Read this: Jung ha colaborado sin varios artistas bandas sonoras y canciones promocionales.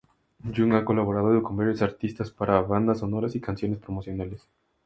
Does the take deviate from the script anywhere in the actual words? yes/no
yes